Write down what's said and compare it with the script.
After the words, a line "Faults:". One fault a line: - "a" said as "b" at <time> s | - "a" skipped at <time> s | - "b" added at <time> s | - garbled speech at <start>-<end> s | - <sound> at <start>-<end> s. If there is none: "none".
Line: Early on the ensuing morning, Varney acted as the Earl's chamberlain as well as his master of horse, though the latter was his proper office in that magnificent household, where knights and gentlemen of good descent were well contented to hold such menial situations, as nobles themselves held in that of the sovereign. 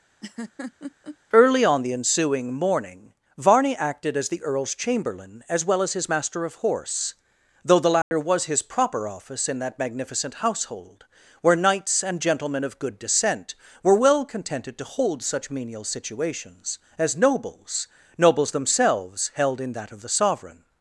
Early on the ensuing morning, Varney acted as the Earl's chamberlain as well as his master of horse, though the latter was his proper office in that magnificent household, where knights and gentlemen of good descent were well contented to hold such menial situations, as nobles nobles themselves held in that of the sovereign.
Faults:
- laugh at 0.2-1.2 s
- dropout at 8.0-8.1 s
- "nobles" added at 18.2 s